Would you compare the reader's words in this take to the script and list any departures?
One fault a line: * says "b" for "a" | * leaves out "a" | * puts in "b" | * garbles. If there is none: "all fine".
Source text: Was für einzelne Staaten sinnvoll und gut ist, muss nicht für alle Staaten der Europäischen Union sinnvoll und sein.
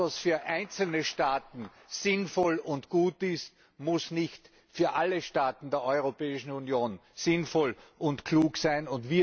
* puts in "klug"